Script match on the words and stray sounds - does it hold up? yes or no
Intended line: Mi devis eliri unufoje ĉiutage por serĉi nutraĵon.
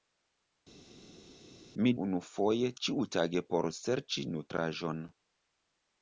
no